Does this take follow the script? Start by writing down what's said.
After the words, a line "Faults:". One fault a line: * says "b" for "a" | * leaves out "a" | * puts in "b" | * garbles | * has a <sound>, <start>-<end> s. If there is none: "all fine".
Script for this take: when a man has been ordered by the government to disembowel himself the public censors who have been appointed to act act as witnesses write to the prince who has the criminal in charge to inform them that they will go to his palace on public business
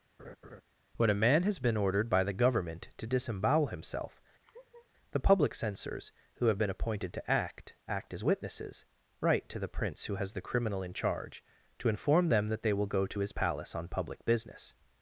when a man has been ordered by the government to disembowel himself the public censors who have been appointed to act act as witnesses write to the prince who has the criminal in charge to inform them that they will go to his palace on public business
Faults:
* has a laugh, 0.2-0.6 s
* has a laugh, 4.4-4.9 s